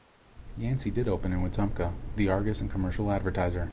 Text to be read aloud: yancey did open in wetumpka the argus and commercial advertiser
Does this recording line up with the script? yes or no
yes